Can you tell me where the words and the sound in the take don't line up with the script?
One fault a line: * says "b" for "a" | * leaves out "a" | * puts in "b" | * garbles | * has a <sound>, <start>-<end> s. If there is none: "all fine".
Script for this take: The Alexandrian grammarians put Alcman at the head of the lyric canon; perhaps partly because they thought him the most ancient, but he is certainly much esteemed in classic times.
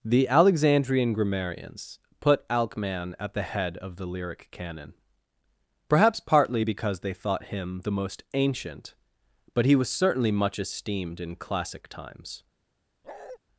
* says "was" for "is"
* has a bark, 13.0-13.4 s